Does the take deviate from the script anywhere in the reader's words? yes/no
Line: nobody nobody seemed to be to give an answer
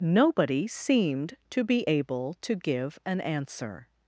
yes